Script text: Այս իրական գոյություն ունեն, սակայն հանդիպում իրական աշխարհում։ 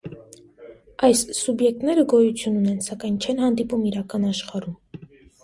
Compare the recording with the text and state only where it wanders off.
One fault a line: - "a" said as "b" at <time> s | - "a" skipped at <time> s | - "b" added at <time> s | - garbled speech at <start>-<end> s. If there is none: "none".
- "իրական" said as "սուբյեկտները" at 1.4 s
- "չեն" added at 3.3 s